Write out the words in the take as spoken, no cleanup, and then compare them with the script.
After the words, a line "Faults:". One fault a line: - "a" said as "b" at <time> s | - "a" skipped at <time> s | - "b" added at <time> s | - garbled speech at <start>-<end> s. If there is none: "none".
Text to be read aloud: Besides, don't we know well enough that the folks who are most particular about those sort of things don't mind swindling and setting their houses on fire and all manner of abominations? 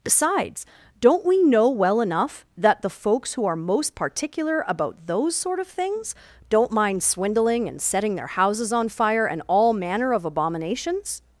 Besides, don't we know well enough that the folks who are most particular about those sort of things don't mind swindling and setting their houses on fire and all manner of abominations?
Faults:
none